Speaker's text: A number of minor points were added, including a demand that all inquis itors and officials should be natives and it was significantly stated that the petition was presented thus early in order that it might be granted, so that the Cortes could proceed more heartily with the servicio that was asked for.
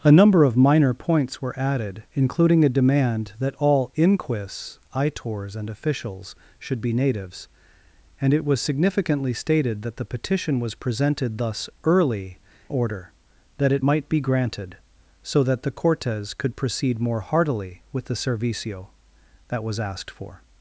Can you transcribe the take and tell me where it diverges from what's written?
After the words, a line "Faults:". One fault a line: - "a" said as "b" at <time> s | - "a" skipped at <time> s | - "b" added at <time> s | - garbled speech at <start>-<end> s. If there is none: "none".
A number of minor points were added, including a demand that all inquis itors and officials should be natives and it was significantly stated that the petition was presented thus early order that it might be granted, so that the Cortes could proceed more heartily with the servicio that was asked for.
Faults:
- "in" skipped at 12.4 s